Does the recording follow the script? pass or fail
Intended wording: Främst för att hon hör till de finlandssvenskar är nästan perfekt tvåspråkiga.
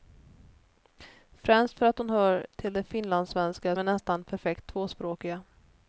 pass